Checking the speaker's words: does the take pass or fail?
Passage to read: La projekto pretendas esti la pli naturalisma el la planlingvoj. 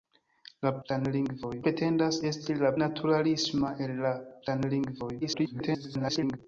fail